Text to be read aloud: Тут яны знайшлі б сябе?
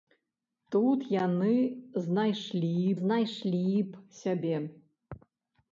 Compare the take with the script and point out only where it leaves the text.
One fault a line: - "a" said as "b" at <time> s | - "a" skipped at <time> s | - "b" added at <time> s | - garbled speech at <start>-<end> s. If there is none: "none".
- "знайшлі" added at 3.0 s